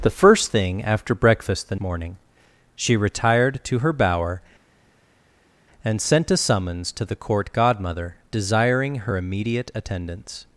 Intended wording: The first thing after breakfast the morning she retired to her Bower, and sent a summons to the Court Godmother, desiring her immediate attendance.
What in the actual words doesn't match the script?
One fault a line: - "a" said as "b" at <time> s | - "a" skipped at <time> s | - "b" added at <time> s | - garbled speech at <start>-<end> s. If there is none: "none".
none